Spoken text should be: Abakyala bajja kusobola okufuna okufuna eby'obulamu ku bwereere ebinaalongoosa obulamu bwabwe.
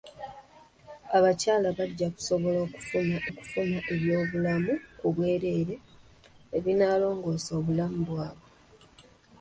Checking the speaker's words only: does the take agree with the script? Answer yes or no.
yes